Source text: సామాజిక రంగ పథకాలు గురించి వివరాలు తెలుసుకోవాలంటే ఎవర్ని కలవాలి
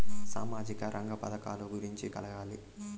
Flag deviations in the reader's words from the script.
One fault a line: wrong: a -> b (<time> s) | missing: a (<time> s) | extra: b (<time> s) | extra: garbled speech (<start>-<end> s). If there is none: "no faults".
missing: వివరాలు తెలుసుకోవాలంటే ఎవర్ని (2.1 s)